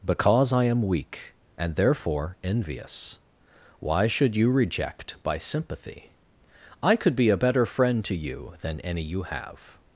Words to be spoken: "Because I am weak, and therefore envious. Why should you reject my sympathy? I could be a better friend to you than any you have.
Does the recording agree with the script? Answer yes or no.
no